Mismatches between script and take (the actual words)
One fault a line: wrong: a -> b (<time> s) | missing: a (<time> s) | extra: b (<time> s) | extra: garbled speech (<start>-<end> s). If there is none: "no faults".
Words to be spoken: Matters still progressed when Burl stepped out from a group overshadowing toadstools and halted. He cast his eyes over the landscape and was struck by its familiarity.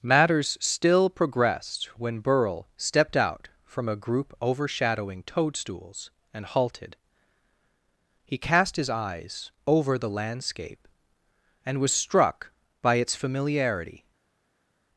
no faults